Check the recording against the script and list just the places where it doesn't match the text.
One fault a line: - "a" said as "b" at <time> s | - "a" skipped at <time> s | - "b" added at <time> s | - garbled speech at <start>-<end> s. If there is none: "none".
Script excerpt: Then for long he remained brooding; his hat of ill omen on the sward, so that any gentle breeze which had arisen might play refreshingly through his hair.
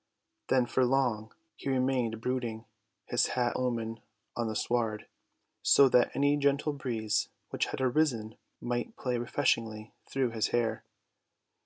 - "of ill" skipped at 3.5 s